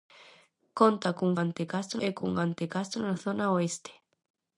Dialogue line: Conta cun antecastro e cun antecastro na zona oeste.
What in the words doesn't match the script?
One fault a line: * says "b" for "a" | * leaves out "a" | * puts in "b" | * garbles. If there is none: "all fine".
all fine